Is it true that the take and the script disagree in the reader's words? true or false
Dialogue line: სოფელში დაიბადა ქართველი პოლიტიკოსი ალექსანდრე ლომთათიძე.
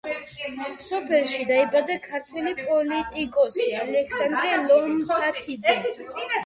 false